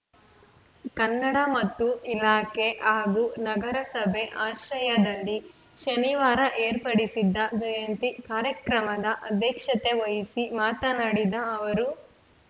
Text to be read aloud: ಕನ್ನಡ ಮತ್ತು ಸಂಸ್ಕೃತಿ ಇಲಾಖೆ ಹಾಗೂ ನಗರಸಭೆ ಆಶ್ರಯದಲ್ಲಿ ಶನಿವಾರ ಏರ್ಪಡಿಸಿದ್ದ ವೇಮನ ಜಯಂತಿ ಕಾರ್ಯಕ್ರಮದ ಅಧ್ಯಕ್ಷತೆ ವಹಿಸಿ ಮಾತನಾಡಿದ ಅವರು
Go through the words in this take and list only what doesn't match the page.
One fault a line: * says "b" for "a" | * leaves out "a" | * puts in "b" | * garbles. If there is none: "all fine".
* leaves out "ಸಂಸ್ಕೃತಿ"
* leaves out "ವೇಮನ"